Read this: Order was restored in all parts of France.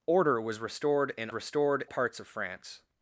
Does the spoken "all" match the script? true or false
false